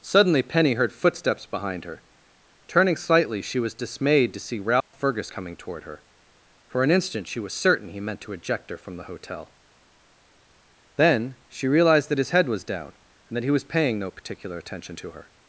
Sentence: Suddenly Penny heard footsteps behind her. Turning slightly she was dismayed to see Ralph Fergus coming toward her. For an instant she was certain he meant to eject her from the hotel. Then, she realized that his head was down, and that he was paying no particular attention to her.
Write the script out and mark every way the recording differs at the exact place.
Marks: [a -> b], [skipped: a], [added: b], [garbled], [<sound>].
Suddenly Penny heard footsteps behind her. Turning slightly she was dismayed to see Ralph [dropout] Fergus coming toward her. For an instant she was certain he meant to eject her from the hotel. Then, she realized that his head was down, and that he was paying no particular attention to her.